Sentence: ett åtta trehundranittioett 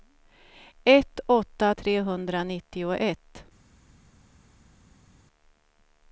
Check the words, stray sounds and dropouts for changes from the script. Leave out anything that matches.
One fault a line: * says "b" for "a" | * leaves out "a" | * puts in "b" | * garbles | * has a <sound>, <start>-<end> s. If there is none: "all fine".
all fine